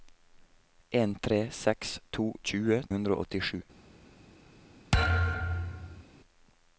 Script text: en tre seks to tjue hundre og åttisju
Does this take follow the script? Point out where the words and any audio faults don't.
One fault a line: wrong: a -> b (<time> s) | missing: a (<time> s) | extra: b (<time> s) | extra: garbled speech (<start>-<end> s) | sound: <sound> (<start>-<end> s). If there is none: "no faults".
sound: thud (4.9-6.0 s)